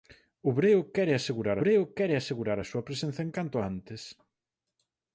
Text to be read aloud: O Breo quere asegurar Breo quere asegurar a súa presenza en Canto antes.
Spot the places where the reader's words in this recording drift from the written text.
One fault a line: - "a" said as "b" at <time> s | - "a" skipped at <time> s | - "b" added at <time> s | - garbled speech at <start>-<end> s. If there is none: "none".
none